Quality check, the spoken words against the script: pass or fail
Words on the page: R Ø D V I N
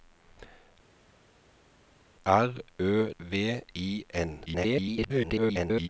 fail